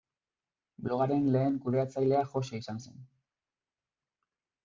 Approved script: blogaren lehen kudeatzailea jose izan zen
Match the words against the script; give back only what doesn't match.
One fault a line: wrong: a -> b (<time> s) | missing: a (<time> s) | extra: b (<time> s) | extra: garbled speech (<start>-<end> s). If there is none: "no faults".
no faults